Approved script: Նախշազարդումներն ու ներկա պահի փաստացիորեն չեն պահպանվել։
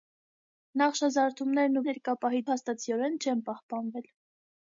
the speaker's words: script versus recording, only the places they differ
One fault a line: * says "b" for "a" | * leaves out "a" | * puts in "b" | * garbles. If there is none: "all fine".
all fine